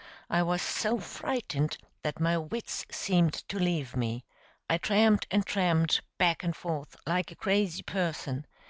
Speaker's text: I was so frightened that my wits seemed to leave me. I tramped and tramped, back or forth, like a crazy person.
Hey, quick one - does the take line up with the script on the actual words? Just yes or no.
no